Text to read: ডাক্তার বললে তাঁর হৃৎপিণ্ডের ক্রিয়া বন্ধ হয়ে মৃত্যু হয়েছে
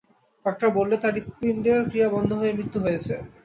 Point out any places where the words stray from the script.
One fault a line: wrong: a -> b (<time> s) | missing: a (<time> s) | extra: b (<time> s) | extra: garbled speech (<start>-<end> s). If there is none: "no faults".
no faults